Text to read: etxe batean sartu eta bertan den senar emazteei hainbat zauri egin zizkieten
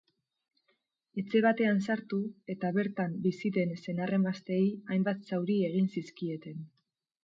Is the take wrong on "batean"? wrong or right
right